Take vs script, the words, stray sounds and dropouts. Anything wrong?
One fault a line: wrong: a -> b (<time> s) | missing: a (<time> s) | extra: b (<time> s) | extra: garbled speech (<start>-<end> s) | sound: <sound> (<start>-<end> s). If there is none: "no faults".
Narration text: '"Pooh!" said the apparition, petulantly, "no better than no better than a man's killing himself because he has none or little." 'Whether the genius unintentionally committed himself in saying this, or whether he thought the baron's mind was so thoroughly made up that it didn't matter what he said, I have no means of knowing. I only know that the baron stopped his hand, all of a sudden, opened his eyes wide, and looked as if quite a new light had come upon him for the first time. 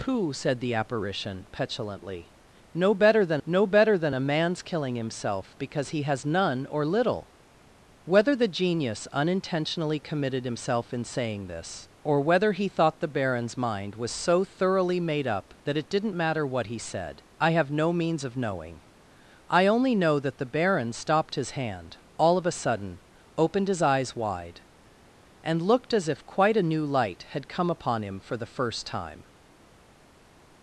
no faults